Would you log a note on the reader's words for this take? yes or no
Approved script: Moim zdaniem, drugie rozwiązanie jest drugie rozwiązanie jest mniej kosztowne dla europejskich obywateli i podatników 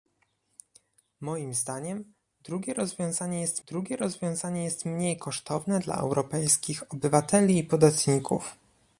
no